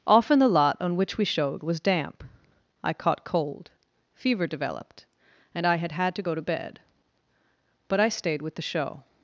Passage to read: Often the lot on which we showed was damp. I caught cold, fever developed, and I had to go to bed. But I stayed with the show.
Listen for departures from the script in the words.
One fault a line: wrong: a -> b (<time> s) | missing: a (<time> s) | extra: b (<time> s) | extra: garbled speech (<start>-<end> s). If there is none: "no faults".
extra: had (5.9 s)